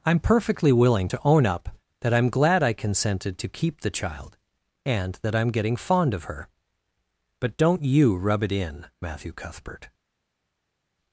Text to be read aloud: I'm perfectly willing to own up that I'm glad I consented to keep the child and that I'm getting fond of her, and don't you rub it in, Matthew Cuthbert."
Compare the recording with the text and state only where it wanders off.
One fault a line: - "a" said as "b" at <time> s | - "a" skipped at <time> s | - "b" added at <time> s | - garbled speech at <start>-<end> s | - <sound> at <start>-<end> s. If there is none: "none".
- "and" said as "but" at 7.4 s